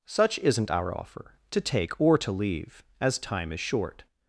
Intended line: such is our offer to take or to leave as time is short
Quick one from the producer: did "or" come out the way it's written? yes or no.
yes